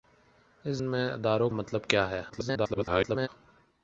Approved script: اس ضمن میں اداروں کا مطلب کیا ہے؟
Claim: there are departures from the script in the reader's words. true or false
true